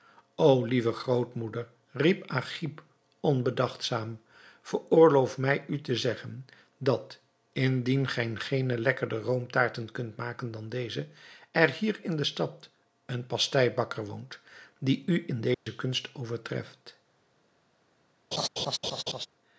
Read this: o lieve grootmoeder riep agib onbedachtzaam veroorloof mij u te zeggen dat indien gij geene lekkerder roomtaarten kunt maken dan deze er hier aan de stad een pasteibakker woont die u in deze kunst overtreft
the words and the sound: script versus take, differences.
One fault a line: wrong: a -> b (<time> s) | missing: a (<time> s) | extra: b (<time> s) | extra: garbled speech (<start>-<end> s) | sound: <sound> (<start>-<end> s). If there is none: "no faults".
wrong: aan -> in (12.0 s)
sound: dropout (15.5-15.7 s)
sound: laugh (18.3-19.3 s)